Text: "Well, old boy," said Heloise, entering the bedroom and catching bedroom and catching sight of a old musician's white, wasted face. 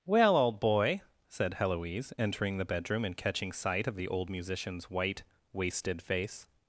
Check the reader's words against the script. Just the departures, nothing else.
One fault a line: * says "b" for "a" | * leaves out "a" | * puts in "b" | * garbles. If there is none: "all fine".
* leaves out "bedroom and catching"
* says "the" for "a"